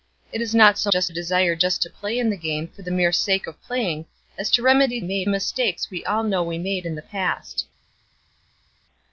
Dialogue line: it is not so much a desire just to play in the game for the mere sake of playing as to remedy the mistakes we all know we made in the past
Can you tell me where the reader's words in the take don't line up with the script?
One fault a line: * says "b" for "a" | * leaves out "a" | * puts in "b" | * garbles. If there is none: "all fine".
* says "just" for "much"
* says "made" for "the"